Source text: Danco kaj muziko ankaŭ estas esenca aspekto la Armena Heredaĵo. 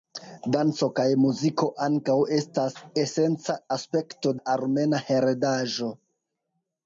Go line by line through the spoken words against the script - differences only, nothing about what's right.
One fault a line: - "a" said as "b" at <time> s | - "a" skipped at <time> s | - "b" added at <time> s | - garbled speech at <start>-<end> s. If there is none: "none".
none